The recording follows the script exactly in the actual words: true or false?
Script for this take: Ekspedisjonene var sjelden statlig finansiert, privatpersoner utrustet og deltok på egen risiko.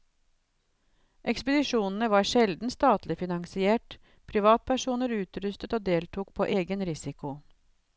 true